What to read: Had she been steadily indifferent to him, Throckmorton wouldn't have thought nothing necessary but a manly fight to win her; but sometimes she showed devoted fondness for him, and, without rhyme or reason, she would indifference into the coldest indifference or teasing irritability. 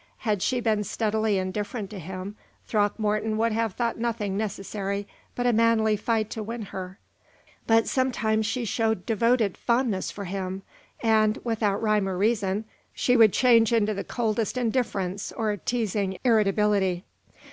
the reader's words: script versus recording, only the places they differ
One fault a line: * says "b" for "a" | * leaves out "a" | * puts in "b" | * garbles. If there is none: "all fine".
* says "would" for "wouldn't"
* says "change" for "indifference"